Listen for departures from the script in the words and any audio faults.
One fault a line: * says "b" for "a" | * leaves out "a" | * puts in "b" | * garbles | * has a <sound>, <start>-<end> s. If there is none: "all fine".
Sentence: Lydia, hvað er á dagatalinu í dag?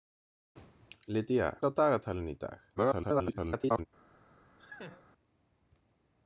* leaves out "hvað"
* garbles
* has a laugh, 4.6-5.0 s